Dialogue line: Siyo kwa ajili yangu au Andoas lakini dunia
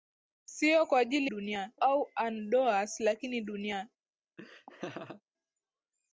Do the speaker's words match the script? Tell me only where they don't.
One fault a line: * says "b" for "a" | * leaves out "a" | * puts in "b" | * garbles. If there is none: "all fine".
* says "dunia" for "yangu"